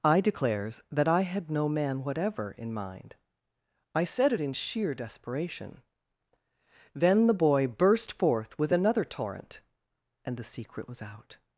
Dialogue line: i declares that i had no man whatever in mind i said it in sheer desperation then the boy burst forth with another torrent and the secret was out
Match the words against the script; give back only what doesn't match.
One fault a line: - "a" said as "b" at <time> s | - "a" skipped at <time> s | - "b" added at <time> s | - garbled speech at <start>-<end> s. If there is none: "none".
none